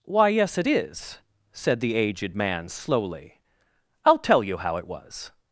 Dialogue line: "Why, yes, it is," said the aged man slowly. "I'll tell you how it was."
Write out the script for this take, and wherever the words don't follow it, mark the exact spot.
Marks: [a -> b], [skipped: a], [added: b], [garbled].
"Why, yes, it is," said the aged man slowly. "I'll tell you how it was."